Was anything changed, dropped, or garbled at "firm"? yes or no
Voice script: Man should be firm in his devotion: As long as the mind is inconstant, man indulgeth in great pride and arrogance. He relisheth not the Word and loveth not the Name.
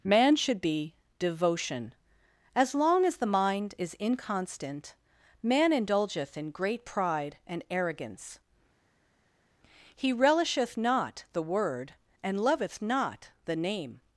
yes